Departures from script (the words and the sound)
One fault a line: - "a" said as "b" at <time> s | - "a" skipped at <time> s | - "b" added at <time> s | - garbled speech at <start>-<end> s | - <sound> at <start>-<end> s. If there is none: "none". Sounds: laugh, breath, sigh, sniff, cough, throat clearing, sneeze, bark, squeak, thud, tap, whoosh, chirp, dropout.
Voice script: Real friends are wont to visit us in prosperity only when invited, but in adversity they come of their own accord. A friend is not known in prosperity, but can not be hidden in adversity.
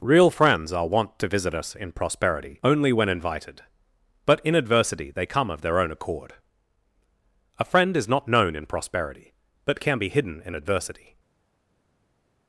- "not" skipped at 10.0 s